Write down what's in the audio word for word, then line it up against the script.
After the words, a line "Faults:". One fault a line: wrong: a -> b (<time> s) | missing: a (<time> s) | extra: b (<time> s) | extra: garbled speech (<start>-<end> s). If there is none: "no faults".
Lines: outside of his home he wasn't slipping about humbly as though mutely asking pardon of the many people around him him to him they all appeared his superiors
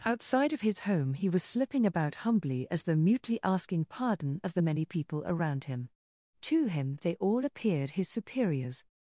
outside of his home he was slipping about humbly as though mutely asking pardon of the many people around him to him they all appeared his superiors
Faults:
wrong: wasn't -> was (1.3 s)
missing: him (5.9 s)